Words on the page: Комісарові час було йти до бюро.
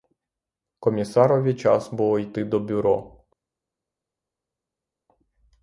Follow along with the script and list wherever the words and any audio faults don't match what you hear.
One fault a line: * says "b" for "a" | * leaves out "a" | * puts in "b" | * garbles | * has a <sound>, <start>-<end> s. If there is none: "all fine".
all fine